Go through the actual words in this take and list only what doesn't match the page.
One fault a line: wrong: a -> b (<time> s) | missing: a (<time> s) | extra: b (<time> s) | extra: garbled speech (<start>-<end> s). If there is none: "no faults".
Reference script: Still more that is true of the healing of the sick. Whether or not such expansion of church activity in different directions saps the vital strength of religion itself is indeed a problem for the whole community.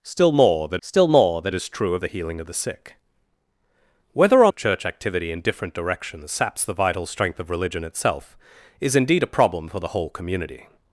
extra: still more that (0.8 s)
missing: not such expansion (4.5 s)